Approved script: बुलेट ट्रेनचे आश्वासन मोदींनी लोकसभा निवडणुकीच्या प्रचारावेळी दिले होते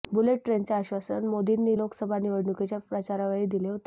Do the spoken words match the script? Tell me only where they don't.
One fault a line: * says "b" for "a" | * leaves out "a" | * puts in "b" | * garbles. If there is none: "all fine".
all fine